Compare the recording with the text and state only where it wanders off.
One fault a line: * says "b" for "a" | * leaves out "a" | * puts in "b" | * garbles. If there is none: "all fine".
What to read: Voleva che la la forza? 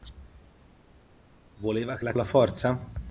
all fine